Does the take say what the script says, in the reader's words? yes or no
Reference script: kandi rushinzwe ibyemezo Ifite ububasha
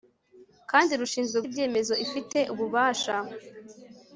yes